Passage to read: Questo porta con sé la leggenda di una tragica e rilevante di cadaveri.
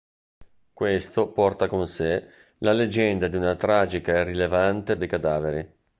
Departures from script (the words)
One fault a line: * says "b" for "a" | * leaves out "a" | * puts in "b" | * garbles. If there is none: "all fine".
all fine